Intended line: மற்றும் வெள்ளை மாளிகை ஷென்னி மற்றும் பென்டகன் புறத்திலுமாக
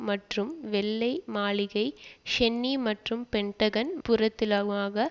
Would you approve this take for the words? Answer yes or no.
yes